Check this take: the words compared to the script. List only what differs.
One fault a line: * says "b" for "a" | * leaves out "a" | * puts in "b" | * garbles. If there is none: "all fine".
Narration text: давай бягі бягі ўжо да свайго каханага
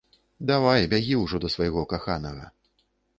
* leaves out "бягі"